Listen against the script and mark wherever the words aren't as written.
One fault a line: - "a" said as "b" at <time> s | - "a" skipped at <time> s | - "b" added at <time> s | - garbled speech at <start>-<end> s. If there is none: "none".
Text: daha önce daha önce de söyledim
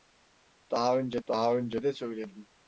none